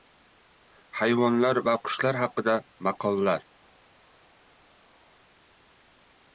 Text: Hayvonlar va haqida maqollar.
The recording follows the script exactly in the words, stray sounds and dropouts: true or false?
false